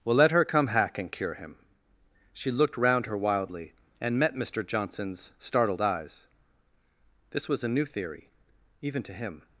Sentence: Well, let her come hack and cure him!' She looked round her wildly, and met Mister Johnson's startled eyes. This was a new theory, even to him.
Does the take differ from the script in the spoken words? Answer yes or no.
no